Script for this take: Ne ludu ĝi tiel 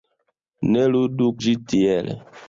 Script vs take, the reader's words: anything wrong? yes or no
no